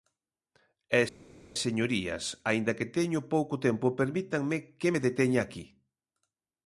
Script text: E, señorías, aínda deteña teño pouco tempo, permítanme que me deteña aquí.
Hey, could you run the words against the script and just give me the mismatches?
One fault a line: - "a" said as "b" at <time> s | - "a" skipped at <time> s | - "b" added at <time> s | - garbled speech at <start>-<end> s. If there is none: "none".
- "deteña" said as "que" at 2.8 s